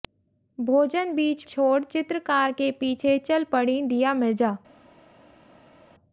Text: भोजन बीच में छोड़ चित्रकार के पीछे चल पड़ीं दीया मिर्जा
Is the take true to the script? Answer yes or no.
no